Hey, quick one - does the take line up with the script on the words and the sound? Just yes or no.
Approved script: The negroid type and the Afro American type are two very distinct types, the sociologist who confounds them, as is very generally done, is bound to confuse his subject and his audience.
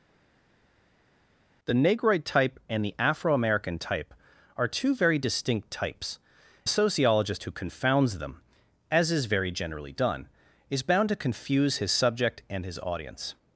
yes